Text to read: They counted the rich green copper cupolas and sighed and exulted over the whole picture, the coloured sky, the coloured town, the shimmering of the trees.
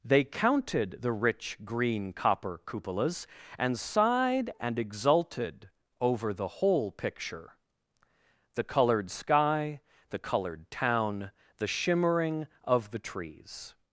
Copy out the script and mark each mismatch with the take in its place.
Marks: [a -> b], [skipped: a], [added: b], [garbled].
They counted the rich green copper cupolas and sighed and exulted over the whole picture, the coloured sky, the coloured town, the shimmering of the trees.